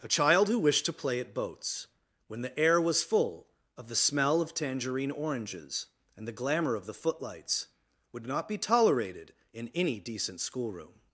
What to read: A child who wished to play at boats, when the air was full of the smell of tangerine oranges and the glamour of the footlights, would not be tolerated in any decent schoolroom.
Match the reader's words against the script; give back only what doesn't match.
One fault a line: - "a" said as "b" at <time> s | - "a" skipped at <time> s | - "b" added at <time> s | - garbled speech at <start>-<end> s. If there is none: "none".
none